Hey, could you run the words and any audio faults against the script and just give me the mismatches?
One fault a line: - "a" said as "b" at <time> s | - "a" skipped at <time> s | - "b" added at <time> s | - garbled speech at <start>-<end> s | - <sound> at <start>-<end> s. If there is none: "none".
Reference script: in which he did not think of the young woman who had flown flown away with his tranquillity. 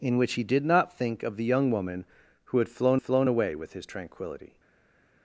none